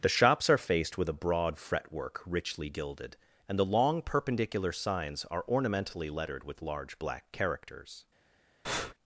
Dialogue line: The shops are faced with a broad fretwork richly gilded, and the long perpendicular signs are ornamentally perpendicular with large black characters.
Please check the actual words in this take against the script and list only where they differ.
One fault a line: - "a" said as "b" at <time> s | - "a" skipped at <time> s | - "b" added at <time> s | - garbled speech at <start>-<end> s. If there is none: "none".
- "perpendicular" said as "lettered" at 6.1 s